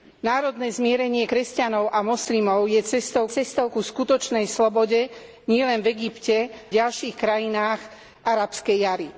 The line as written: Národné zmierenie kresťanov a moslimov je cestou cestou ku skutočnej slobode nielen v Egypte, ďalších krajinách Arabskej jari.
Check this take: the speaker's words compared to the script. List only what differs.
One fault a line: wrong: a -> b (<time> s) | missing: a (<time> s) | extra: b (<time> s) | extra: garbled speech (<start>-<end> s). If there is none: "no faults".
no faults